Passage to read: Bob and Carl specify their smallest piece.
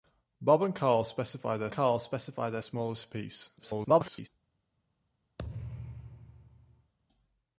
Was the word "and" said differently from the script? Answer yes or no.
no